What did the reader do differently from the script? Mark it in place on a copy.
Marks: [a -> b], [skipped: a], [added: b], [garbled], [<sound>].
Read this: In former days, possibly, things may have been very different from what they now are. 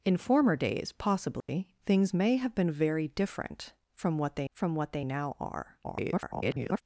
In former days, possibly, [dropout] things may have been very different from what they [added: from what they] now are. [garbled]